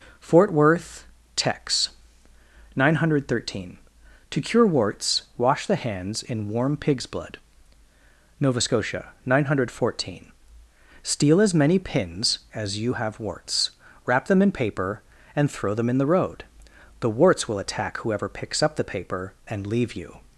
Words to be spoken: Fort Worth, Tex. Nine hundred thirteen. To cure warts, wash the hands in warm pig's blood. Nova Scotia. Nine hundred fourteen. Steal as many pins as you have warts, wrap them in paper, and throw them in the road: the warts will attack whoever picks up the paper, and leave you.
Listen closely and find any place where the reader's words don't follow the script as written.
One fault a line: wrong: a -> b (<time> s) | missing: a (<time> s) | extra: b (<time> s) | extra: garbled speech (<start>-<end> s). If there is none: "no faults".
no faults